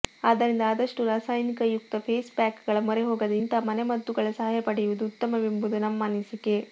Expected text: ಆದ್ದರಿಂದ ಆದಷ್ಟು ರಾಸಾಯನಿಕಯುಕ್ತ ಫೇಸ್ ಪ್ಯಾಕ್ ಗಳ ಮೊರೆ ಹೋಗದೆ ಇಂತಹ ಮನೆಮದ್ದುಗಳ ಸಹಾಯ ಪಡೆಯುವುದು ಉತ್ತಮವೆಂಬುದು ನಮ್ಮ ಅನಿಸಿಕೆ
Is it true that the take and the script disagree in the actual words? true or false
false